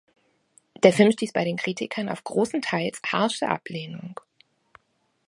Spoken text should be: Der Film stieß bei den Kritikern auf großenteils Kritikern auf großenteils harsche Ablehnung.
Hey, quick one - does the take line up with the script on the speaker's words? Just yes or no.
no